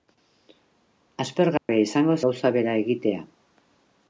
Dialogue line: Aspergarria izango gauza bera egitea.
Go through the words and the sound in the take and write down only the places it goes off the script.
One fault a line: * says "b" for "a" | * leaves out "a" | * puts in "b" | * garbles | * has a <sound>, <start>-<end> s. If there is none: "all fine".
* has a dropout, 1.6-1.7 s